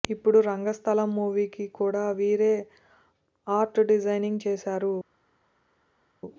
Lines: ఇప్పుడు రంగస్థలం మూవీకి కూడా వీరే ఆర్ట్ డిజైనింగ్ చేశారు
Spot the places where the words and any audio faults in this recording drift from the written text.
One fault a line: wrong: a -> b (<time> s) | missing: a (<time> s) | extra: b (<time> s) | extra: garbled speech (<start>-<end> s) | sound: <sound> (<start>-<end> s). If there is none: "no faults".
no faults